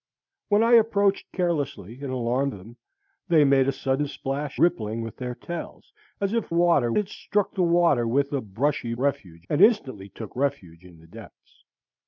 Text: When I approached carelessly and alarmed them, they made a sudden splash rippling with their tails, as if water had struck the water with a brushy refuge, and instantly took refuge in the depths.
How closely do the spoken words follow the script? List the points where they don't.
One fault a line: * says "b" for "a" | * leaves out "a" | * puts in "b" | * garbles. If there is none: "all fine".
all fine